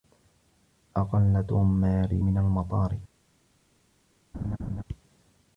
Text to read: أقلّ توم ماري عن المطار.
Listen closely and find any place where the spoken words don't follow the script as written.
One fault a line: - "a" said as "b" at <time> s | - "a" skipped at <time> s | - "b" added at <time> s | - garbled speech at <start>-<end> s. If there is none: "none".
- "عن" said as "من" at 2.2 s